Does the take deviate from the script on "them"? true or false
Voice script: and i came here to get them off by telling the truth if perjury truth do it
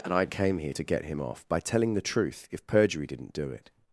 true